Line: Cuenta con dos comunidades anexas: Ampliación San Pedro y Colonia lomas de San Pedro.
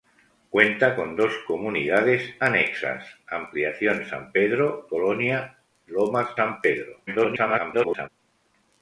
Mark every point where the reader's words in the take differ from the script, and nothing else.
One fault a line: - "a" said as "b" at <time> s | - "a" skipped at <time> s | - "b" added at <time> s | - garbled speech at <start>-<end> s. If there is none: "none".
- "y" skipped at 4.9 s
- "de" skipped at 6.3 s
- garbled speech at 7.1-8.1 s